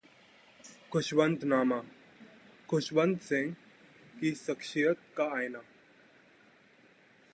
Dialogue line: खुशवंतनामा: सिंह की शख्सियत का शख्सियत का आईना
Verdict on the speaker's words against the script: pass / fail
fail